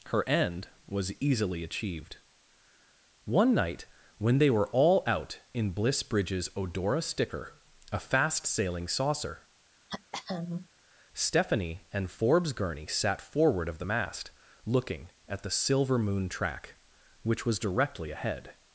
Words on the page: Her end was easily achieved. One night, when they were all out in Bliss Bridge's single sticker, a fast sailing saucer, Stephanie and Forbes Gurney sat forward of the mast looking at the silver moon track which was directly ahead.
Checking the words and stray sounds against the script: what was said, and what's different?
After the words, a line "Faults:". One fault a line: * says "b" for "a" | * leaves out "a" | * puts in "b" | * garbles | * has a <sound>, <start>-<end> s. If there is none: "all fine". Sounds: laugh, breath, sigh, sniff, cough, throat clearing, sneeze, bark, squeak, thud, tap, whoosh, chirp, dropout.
Her end was easily achieved. One night, when they were all out in Bliss Bridge's odora sticker, a fast sailing saucer, Stephanie and Forbes Gurney sat forward of the mast looking at the silver moon track which was directly ahead.
Faults:
* says "odora" for "single"
* has a throat clearing, 9.9-10.7 s